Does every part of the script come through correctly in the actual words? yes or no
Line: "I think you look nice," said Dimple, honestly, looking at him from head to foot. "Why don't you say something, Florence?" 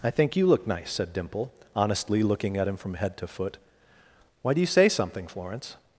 no